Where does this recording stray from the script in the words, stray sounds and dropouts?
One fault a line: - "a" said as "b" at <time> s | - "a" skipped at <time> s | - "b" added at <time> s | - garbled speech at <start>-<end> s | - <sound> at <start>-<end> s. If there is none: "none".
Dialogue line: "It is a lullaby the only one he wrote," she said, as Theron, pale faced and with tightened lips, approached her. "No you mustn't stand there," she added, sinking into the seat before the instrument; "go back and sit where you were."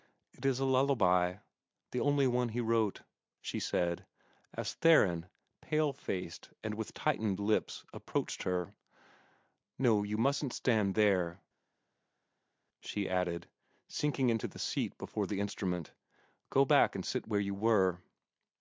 none